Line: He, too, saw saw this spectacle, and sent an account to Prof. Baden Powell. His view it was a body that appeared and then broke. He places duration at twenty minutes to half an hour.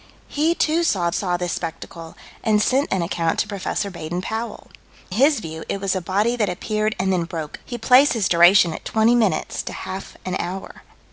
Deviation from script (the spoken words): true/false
false